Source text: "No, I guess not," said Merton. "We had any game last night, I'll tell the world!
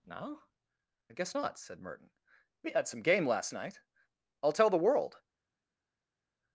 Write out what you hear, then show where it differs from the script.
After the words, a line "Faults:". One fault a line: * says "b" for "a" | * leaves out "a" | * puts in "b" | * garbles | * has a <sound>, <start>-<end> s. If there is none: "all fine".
"No, I guess not," said Merton. "We had some game last night, I'll tell the world!
Faults:
* says "some" for "any"